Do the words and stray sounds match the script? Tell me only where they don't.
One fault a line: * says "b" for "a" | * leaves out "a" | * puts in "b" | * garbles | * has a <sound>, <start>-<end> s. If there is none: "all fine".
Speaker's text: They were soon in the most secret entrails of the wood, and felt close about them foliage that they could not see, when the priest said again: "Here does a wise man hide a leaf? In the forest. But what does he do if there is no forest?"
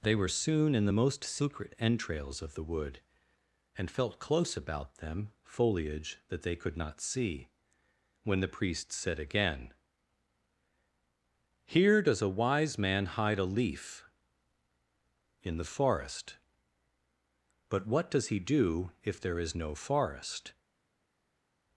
all fine